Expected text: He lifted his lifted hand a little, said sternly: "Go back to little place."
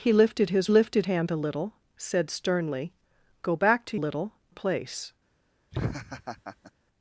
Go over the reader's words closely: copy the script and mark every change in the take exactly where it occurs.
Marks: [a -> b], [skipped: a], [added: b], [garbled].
He lifted his lifted hand a little, said sternly: "Go back to little place."